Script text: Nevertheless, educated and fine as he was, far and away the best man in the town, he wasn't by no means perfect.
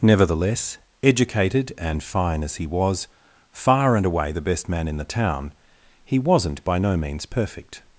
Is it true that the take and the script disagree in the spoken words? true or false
false